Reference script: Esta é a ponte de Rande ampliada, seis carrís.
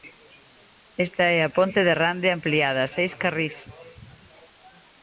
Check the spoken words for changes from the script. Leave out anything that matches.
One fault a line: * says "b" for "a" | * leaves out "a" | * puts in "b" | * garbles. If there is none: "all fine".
all fine